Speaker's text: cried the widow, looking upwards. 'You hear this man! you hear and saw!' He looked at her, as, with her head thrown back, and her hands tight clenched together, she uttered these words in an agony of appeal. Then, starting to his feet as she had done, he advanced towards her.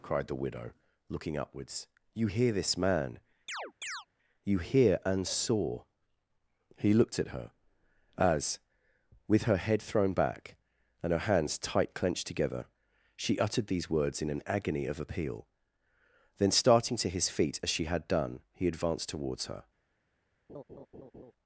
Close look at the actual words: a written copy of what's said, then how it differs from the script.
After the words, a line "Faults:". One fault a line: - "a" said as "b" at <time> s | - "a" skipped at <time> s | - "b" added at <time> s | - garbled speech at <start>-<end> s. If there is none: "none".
cried the widow, looking upwards. 'You hear this man! you hear and saw!' He looked at her, as, with her head thrown back, and her hands tight clenched together, she uttered these words in an agony of appeal. Then, starting to his feet as she had done, he advanced towards her.
Faults:
none